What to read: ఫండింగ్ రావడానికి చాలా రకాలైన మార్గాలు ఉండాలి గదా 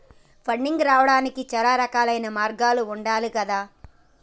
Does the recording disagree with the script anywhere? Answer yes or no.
no